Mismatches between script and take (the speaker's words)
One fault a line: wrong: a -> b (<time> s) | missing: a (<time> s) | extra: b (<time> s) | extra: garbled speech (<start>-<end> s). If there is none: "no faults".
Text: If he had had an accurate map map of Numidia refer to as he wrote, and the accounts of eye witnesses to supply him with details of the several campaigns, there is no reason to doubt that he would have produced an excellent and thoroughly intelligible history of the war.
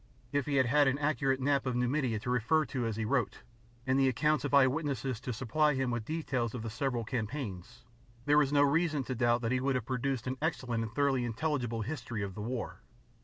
missing: map (1.7 s)
extra: to (2.2 s)